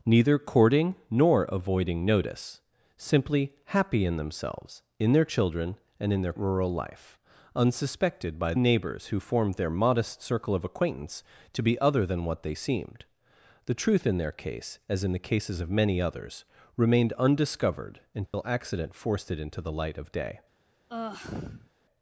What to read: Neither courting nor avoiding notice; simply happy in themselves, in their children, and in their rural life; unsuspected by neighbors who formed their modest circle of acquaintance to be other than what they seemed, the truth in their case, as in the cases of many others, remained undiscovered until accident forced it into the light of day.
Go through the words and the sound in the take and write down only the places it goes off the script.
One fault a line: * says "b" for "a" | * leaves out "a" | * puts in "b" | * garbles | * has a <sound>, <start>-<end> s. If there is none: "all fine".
* has a dropout, 18.3-18.3 s
* has a sigh, 20.9-21.7 s